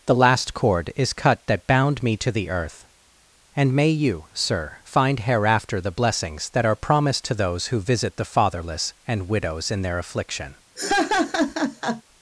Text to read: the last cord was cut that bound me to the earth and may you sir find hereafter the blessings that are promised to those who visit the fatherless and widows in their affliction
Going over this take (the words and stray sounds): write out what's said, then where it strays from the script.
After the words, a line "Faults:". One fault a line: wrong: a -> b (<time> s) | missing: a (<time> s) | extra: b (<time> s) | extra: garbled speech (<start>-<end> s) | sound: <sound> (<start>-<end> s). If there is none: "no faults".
the last cord is cut that bound me to the earth and may you sir find hereafter the blessings that are promised to those who visit the fatherless and widows in their affliction
Faults:
wrong: was -> is (0.9 s)
sound: laugh (10.8-12.0 s)